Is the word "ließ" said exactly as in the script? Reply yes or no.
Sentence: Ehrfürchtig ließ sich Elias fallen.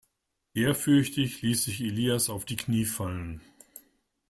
yes